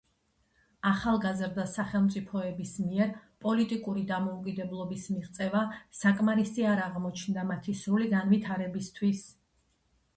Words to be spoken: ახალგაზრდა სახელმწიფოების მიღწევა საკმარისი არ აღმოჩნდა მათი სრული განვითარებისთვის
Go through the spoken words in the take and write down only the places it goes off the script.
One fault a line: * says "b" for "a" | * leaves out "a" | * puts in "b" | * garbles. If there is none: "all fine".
* puts in "მიერ პოლიტიკური დამოუკიდებლობის"